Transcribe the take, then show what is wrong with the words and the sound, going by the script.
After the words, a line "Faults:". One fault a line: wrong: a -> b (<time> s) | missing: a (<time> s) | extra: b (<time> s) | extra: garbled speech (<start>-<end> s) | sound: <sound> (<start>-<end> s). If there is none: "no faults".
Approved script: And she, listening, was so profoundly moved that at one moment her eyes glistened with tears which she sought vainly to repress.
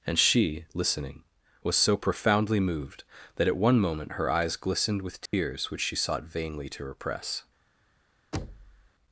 And she, listening, was so profoundly moved that at one moment her eyes glistened with tears which she sought vainly to repress.
Faults:
sound: dropout (5.3-5.3 s)
sound: thud (8.3-8.9 s)